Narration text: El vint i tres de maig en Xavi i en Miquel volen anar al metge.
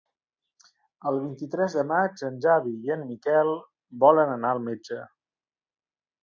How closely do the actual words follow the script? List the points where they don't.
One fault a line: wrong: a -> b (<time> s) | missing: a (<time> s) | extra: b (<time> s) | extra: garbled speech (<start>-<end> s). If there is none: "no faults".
no faults